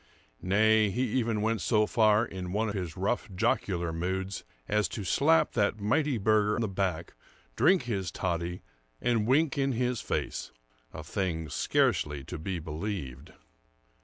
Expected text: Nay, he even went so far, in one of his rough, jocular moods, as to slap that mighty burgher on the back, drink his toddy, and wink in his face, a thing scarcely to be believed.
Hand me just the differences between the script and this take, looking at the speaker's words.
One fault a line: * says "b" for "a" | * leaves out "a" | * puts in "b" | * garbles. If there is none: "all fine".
* leaves out "of"
* leaves out "on"